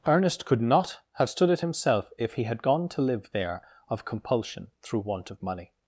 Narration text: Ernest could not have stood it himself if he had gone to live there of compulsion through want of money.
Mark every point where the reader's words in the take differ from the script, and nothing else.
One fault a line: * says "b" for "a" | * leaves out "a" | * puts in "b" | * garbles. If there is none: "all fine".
all fine